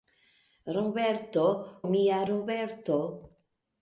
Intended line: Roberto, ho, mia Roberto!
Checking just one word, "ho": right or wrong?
wrong